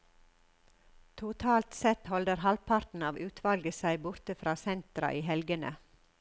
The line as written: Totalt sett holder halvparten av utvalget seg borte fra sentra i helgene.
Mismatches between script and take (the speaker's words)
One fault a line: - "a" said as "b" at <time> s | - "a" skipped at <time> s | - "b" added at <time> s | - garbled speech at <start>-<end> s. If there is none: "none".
none